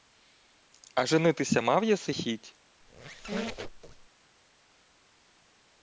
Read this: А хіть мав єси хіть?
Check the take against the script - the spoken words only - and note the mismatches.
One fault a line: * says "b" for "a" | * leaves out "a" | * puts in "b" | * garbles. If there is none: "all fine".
* says "женитися" for "хіть"